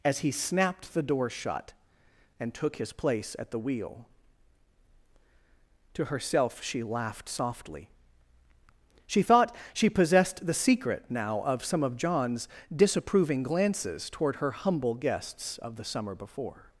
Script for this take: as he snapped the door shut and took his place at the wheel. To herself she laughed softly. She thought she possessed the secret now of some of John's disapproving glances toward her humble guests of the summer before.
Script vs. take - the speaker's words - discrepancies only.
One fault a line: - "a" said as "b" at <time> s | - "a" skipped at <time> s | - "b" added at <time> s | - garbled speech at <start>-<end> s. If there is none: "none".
none